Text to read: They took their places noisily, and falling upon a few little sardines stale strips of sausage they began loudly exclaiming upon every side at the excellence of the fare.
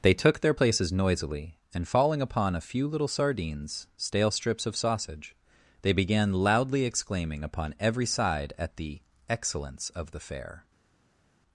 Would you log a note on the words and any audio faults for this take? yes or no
no